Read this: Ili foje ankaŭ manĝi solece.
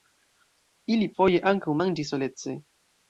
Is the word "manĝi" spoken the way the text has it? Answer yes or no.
yes